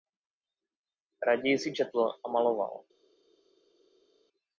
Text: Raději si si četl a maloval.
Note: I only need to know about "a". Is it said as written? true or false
true